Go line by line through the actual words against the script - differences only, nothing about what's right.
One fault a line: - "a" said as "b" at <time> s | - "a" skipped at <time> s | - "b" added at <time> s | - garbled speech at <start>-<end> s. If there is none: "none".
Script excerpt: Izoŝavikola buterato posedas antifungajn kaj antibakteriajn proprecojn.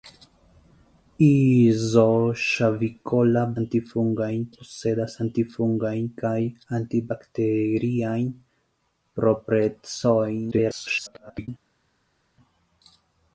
- "buterato" said as "antifungajn" at 3.6 s
- garbled speech at 10.5-11.5 s